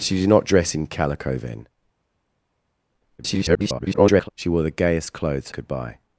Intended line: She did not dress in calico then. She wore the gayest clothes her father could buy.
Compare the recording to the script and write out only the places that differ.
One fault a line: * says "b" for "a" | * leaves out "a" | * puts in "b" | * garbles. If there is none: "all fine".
* garbles
* leaves out "her father"